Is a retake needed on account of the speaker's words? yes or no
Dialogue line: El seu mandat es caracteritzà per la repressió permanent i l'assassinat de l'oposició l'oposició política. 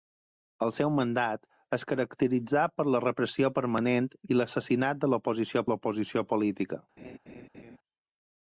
no